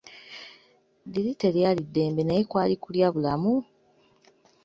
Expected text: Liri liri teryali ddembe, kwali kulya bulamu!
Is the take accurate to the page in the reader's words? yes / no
no